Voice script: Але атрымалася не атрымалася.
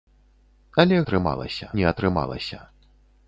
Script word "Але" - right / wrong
right